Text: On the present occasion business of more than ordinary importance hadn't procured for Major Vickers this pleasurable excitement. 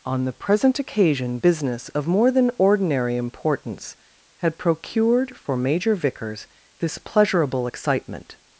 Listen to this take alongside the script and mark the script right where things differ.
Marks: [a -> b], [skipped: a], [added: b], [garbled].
On the present occasion business of more than ordinary importance [hadn't -> had] procured for Major Vickers this pleasurable excitement.